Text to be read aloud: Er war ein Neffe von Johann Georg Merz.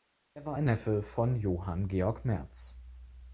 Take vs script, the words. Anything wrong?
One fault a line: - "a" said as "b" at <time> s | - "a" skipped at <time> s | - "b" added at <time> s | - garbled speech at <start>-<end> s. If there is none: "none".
none